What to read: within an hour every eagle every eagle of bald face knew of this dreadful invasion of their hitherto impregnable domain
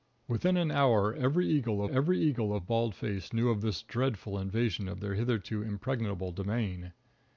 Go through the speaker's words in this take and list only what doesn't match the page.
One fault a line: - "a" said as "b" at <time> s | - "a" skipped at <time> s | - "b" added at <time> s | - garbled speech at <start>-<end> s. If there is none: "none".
none